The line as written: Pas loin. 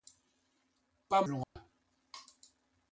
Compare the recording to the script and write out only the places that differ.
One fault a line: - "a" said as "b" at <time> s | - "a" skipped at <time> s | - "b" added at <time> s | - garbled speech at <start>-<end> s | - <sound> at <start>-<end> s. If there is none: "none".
- dropout at 1.4-1.6 s